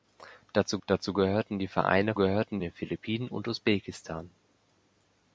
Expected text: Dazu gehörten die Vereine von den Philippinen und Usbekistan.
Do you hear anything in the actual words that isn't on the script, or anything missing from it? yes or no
yes